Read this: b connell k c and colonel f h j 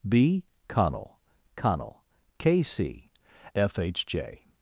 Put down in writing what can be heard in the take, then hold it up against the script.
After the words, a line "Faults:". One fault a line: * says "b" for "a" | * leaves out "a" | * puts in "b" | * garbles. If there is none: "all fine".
b connell connell k c f h j
Faults:
* puts in "connell"
* leaves out "and colonel"